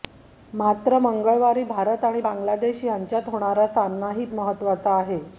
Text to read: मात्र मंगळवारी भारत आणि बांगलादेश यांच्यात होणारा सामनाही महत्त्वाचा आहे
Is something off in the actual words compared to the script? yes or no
no